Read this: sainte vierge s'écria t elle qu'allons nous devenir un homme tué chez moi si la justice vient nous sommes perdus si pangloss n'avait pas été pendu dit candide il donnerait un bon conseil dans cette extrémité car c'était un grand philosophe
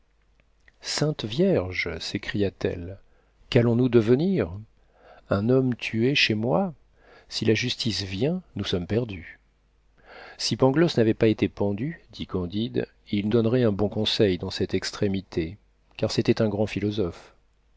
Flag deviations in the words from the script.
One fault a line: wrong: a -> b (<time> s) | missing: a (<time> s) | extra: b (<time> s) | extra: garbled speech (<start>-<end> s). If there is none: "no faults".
no faults